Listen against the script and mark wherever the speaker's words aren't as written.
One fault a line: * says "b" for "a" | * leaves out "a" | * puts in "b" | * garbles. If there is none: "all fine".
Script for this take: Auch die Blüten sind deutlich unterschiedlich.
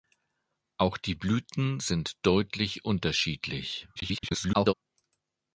* garbles